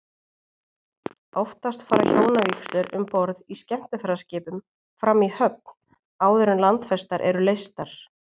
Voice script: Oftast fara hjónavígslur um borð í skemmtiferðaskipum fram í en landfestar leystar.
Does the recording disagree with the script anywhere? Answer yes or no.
yes